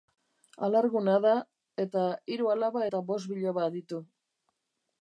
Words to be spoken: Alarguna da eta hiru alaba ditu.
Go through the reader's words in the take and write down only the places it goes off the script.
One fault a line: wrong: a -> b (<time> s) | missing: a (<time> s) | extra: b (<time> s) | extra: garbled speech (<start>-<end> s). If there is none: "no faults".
extra: eta bost biloba (2.8 s)